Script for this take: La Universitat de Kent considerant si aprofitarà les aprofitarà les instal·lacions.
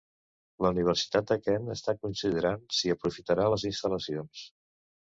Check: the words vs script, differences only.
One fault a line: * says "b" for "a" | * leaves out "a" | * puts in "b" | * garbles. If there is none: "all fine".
* puts in "està"
* leaves out "aprofitarà les"